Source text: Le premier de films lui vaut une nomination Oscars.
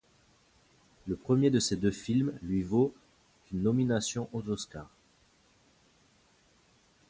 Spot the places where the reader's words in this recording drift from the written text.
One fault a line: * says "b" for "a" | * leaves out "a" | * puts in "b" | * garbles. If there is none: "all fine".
* puts in "ces deux"
* puts in "aux"